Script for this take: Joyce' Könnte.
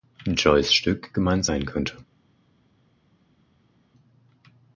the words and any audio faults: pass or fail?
fail